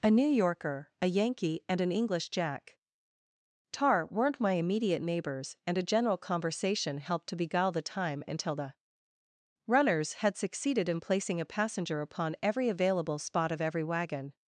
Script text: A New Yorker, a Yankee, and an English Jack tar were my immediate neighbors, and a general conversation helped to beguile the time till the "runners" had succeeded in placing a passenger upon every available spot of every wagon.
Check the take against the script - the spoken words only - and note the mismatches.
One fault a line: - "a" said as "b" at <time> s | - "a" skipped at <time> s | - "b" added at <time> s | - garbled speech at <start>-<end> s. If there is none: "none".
- "were" said as "weren't" at 4.1 s
- "till" said as "until" at 8.3 s